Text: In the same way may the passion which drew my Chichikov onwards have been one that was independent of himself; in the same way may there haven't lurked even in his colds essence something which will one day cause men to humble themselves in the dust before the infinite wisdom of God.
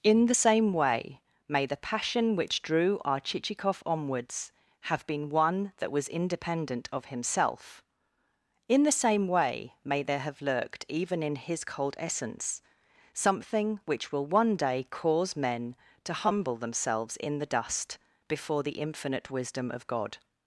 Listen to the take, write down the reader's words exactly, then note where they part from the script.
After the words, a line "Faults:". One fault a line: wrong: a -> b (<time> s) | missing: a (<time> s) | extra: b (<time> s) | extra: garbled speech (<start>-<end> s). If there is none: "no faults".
In the same way may the passion which drew our Chichikov onwards have been one that was independent of himself; in the same way may there have lurked even in his cold essence something which will one day cause men to humble themselves in the dust before the infinite wisdom of God.
Faults:
wrong: my -> our (3.0 s)
wrong: haven't -> have (10.2 s)
wrong: colds -> cold (11.6 s)